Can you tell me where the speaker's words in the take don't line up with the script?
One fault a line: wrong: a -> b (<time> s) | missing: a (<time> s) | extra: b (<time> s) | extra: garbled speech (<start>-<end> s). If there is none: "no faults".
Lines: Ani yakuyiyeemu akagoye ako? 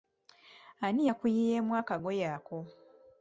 no faults